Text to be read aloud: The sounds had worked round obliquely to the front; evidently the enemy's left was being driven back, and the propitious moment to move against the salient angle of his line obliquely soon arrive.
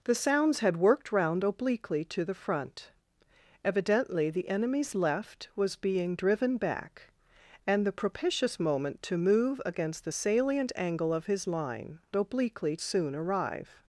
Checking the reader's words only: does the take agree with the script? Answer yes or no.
yes